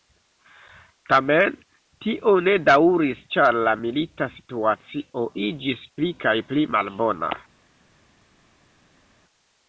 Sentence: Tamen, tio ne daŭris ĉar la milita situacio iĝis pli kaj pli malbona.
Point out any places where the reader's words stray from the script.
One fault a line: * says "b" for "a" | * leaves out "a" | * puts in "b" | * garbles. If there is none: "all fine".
all fine